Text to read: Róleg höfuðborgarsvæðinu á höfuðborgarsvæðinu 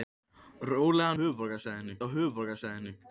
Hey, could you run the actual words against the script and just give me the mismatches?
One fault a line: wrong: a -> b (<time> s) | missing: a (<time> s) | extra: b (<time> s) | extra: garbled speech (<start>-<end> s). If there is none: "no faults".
no faults